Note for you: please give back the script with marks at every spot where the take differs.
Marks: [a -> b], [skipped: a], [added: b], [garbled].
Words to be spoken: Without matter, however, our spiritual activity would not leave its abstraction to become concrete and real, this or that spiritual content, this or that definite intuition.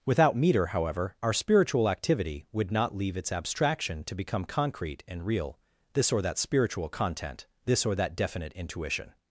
Without [matter, -> meter] however, our spiritual activity would not leave its abstraction to become concrete and real, this or that spiritual content, this or that definite intuition.